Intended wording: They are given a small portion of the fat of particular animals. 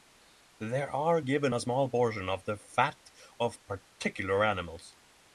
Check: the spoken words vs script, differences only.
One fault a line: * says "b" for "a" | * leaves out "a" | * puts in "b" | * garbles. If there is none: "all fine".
all fine